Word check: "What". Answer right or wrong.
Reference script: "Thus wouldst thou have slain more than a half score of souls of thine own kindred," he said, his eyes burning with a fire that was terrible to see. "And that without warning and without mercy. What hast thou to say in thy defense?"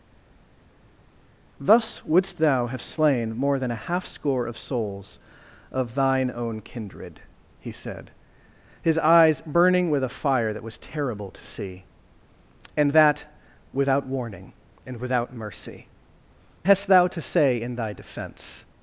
wrong